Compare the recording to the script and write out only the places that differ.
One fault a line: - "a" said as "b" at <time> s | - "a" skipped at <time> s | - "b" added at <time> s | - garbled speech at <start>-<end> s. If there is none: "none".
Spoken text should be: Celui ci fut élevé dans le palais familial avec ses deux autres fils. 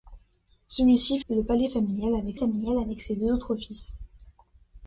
- "fut élevé dans le palais" said as "le palais familial avec" at 1.3 s